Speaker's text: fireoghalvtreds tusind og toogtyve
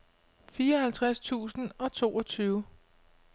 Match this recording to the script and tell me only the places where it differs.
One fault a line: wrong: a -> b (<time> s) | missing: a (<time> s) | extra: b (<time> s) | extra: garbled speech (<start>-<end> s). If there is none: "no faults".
no faults